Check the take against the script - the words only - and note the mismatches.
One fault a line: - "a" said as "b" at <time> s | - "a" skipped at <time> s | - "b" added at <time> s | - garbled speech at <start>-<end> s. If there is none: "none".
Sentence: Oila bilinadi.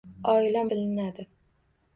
none